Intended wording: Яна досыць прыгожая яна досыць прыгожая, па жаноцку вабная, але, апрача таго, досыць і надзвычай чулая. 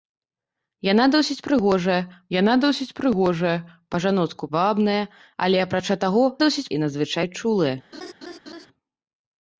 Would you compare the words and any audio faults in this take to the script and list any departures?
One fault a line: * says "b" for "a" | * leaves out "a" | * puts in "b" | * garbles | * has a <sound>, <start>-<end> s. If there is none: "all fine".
* has a laugh, 7.9-8.7 s